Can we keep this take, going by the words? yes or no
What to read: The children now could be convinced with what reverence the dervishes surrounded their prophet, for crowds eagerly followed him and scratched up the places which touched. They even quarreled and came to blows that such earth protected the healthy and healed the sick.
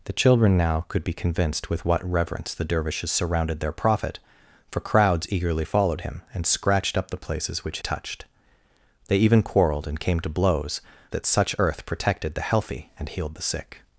yes